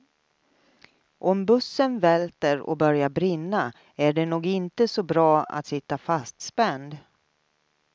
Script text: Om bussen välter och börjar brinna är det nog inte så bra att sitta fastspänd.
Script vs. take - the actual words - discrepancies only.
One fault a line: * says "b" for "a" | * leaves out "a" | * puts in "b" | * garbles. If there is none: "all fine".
all fine